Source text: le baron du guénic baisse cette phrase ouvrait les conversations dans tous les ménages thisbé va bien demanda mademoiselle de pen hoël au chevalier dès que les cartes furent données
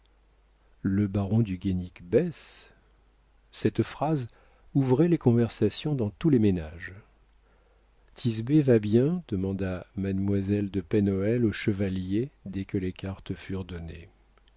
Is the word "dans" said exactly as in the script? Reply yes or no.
yes